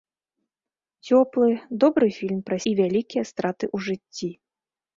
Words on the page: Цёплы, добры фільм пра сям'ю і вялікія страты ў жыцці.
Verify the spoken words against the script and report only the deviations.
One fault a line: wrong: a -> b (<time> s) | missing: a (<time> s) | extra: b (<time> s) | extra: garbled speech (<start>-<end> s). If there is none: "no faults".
missing: сям'ю (2.6 s)